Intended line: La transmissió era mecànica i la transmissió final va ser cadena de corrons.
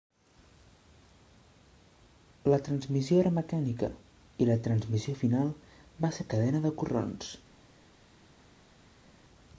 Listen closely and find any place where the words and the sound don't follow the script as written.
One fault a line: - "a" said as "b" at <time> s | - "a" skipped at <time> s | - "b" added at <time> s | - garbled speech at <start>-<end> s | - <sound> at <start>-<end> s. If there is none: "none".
none